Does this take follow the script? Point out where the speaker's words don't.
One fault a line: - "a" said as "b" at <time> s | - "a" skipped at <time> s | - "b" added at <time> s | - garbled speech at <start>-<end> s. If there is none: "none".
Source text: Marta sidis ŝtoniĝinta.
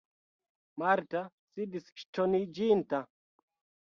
none